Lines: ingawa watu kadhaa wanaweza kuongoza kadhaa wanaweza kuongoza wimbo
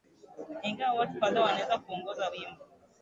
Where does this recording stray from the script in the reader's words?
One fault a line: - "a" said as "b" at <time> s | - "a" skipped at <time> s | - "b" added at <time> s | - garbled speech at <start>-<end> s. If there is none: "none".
- "kadhaa wanaweza kuongoza" skipped at 2.3 s